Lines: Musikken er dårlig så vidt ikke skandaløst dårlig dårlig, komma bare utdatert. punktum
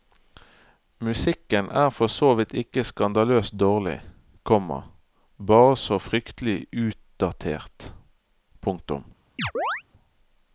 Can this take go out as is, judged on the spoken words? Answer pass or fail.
fail